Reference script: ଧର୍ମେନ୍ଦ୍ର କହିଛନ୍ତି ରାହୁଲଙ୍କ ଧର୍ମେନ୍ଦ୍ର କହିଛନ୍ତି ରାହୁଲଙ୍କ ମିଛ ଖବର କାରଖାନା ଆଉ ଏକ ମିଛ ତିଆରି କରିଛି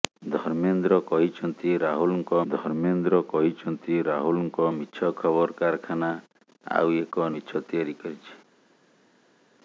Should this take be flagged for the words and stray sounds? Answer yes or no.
no